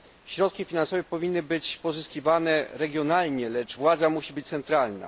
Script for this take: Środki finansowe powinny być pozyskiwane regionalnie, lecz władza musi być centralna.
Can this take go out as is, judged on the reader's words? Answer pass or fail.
pass